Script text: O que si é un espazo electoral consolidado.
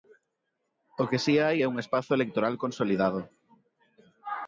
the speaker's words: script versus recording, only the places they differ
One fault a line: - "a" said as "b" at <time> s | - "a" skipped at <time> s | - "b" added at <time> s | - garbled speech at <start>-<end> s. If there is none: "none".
- "hai" added at 1.4 s